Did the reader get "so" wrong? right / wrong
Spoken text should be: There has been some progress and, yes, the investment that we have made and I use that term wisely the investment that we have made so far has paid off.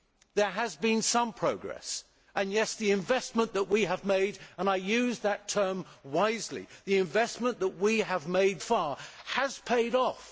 wrong